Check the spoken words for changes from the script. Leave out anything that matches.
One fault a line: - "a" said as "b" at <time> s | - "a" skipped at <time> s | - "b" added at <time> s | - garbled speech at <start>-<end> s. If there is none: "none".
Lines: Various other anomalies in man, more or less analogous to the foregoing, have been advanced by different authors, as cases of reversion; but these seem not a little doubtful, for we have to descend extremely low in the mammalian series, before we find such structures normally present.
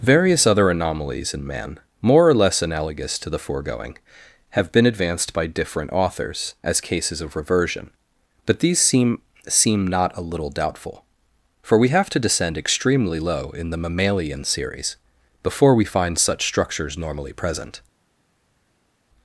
- "seem" added at 9.5 s